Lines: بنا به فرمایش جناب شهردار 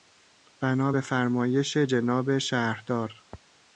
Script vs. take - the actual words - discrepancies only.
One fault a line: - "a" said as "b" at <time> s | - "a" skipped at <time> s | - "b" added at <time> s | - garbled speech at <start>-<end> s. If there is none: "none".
none